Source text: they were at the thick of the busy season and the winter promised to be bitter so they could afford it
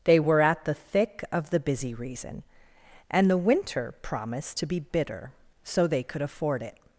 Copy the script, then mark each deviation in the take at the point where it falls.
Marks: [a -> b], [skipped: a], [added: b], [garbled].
they were at the thick of the busy [season -> reason] and the winter promised to be bitter so they could afford it